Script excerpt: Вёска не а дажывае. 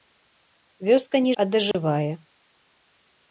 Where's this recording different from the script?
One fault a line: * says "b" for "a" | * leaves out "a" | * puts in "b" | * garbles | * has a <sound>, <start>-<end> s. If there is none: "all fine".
* has a dropout, 1.7-1.7 s